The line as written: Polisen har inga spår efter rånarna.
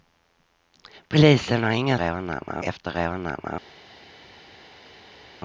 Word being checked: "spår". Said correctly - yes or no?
no